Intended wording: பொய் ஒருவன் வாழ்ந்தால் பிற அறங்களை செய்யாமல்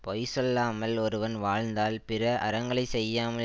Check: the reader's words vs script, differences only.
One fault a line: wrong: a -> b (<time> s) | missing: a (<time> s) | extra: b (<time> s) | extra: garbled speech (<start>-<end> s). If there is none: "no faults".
extra: சொல்லாமல் (0.2 s)